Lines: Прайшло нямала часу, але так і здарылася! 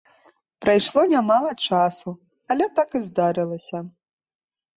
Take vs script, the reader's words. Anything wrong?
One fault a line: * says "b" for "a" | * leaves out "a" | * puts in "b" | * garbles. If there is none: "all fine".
all fine